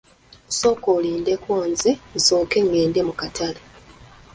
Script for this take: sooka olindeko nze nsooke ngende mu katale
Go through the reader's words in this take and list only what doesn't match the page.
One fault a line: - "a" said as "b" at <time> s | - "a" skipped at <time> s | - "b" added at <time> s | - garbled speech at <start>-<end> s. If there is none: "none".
none